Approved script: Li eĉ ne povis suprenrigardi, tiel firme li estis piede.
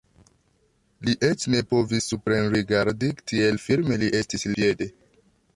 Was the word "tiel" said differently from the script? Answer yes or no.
no